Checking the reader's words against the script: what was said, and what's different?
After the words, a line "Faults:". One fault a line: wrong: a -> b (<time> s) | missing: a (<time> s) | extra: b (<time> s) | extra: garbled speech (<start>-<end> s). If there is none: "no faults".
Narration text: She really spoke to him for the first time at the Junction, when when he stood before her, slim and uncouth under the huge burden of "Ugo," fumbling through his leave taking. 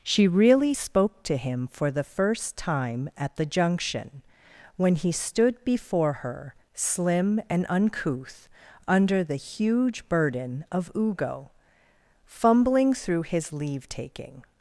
She really spoke to him for the first time at the Junction, when he stood before her, slim and uncouth under the huge burden of "Ugo," fumbling through his leave taking.
Faults:
missing: when (5.0 s)